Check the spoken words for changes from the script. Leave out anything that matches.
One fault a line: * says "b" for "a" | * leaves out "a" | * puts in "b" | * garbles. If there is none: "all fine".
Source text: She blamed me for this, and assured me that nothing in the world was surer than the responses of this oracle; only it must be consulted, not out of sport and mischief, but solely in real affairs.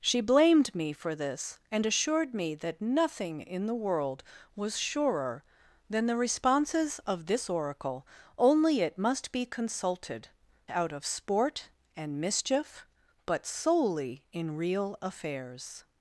* leaves out "not"